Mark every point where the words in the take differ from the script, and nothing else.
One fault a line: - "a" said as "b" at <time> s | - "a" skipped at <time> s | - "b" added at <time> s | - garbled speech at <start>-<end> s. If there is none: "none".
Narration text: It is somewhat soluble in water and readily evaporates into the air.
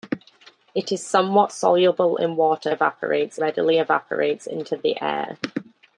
- "and" said as "evaporates" at 2.7 s